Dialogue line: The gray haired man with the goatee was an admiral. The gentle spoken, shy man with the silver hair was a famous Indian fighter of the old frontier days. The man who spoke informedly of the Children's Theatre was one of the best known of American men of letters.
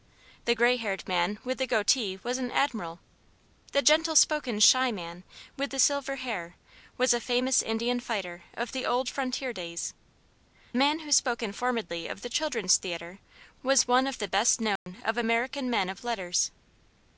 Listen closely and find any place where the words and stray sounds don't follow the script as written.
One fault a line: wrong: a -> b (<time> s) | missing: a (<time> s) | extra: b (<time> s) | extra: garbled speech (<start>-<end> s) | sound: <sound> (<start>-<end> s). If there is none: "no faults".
missing: The (9.9 s)
sound: dropout (14.8-14.9 s)